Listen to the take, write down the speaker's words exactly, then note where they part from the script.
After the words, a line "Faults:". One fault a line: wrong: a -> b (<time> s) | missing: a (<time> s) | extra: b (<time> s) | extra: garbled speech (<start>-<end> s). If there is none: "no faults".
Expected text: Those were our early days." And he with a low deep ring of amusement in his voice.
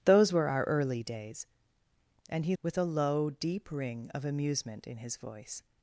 Those were our early days." And he with a low deep ring of amusement in his voice.
Faults:
no faults